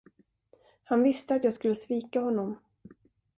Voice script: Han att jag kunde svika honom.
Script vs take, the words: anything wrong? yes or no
yes